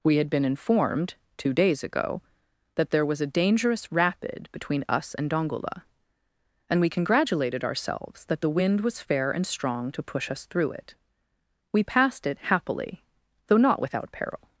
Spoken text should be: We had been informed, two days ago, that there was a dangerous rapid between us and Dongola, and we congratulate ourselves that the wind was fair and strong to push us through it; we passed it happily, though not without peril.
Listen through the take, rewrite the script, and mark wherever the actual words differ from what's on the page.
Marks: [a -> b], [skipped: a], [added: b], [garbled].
We had been informed, two days ago, that there was a dangerous rapid between us and Dongola, and we [congratulate -> congratulated] ourselves that the wind was fair and strong to push us through it; we passed it happily, though not without peril.